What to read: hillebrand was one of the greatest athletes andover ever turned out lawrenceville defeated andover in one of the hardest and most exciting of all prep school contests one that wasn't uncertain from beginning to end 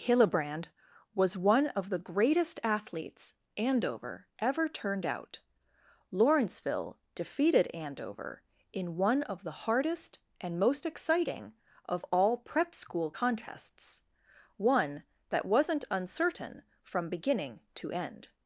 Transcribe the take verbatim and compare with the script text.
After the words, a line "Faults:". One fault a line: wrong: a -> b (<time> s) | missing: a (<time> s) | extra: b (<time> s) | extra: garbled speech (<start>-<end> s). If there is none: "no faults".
hillebrand was one of the greatest athletes andover ever turned out lawrenceville defeated andover in one of the hardest and most exciting of all prep school contests one that wasn't uncertain from beginning to end
Faults:
no faults